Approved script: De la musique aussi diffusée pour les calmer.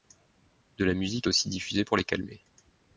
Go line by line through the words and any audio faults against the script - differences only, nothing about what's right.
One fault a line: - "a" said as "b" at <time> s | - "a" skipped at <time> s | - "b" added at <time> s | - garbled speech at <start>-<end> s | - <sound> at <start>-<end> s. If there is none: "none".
none